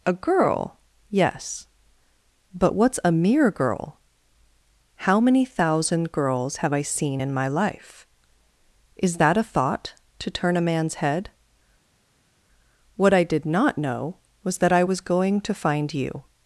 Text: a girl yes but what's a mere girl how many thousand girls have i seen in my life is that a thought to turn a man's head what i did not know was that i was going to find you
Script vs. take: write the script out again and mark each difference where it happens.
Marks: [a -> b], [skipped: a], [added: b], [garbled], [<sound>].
a girl yes but what's a mere girl how many thousand girls have i seen in my life is that a thought to turn a man's head what i did not know was that i was going to find you